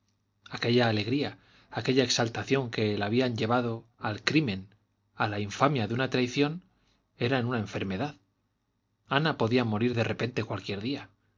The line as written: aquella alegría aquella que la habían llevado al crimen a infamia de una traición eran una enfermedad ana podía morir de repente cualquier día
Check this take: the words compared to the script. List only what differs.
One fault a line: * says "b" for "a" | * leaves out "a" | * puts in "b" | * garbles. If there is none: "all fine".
* puts in "exaltación"
* puts in "la"